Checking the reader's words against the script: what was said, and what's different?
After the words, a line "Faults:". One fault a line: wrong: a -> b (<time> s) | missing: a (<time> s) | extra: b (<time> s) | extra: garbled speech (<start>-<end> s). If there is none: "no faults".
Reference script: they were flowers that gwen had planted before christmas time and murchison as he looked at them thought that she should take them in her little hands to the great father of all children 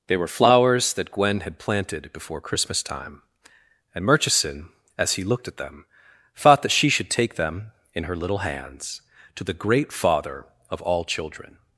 they were flowers that gwen had planted before christmas time and murchison as he looked at them thought that she should take them in her little hands to the great father of all children
Faults:
no faults